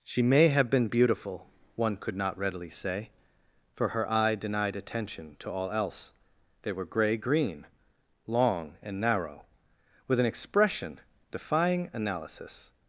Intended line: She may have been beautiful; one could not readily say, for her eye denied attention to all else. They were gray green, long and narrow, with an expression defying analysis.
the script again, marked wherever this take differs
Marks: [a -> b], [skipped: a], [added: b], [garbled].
She may have been beautiful; one could not readily say, for her eye denied attention to all else. They were gray green, long and narrow, with an expression defying analysis.